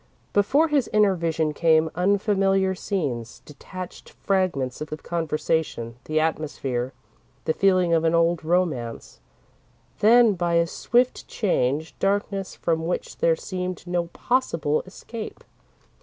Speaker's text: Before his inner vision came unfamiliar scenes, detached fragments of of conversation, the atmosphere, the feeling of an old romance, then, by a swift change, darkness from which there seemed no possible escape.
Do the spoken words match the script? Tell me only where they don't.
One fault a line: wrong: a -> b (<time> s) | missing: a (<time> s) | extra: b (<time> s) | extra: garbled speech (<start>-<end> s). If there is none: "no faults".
no faults